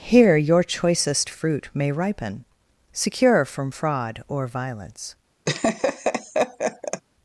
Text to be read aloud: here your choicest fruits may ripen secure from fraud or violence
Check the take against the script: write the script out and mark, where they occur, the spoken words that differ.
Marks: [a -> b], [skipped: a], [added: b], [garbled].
here your choicest [fruits -> fruit] may ripen secure from fraud or violence